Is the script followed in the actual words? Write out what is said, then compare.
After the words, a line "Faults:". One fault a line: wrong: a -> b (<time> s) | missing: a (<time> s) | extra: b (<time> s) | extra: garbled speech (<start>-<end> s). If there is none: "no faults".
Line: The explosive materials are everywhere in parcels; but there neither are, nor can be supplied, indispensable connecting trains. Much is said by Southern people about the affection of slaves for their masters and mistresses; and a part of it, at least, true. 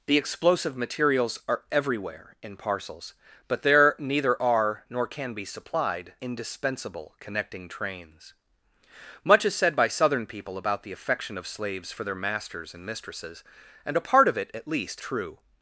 The explosive materials are everywhere in parcels; but there neither are, nor can be supplied, indispensable connecting trains. Much is said by Southern people about the affection of slaves for their masters and mistresses; and a part of it, at least, true.
Faults:
no faults